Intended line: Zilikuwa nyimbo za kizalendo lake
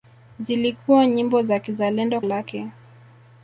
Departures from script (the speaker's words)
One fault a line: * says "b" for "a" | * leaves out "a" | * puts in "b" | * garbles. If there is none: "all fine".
all fine